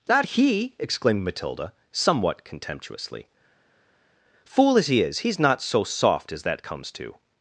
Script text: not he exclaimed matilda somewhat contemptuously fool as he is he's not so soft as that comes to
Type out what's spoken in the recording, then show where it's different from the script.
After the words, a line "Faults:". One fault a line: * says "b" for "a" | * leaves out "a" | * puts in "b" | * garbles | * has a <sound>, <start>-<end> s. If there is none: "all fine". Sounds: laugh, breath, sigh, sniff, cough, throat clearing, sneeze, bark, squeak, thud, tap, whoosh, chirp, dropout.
not he exclaimed matilda somewhat contemptuously fool as he is he's not so soft as that comes to
Faults:
all fine